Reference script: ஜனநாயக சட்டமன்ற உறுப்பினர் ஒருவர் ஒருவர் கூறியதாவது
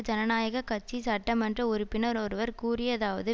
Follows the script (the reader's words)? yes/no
no